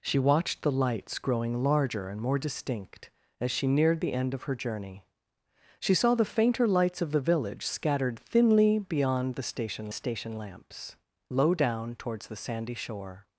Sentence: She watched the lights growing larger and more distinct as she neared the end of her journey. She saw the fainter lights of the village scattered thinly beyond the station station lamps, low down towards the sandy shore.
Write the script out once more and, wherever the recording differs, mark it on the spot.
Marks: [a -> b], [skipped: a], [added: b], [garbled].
She watched the lights growing larger and more distinct as she neared the end of her journey. She saw the fainter lights of the village scattered thinly beyond the station station lamps, low down towards the sandy shore.